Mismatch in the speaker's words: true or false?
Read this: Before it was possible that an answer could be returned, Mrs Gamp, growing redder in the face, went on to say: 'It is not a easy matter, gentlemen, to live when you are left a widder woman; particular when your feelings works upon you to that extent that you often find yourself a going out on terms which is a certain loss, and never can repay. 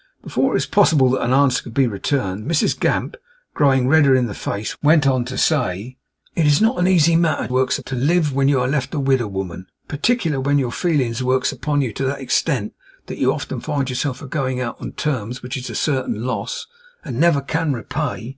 true